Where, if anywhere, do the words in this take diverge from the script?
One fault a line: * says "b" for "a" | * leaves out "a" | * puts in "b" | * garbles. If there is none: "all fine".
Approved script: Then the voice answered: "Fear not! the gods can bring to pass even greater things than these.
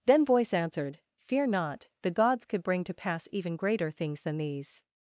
* leaves out "the"
* says "could" for "can"